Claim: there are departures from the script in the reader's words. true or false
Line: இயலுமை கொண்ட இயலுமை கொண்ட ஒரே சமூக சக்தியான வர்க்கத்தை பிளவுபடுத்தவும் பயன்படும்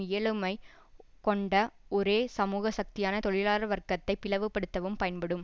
true